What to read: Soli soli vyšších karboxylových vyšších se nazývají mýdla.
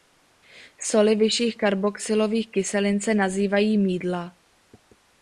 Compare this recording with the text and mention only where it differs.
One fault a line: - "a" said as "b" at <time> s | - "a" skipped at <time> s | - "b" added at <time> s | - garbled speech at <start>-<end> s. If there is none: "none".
- "soli" skipped at 1.1 s
- "vyšších" said as "kyselin" at 2.5 s